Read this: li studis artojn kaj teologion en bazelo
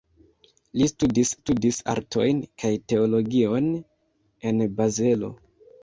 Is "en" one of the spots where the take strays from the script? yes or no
no